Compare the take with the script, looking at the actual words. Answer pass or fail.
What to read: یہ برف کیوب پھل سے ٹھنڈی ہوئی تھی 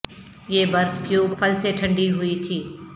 pass